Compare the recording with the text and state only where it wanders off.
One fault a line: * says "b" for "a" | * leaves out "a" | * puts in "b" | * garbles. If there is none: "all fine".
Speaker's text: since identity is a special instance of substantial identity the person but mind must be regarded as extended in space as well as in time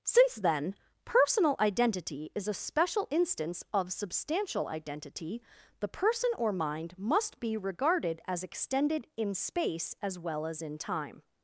* puts in "then personal"
* says "or" for "but"